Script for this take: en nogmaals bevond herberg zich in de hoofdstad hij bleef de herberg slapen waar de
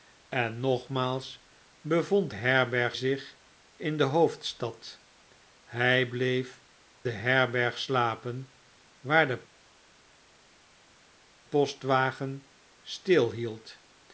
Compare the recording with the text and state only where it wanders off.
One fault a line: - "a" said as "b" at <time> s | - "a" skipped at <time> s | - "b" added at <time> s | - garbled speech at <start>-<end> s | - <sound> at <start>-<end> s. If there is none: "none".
none